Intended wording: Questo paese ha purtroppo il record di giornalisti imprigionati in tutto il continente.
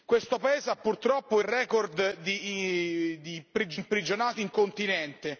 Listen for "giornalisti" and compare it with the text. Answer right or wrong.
wrong